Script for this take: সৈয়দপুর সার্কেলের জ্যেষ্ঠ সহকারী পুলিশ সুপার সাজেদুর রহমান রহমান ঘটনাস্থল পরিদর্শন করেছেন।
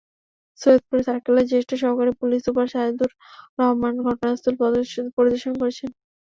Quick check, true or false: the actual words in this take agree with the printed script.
false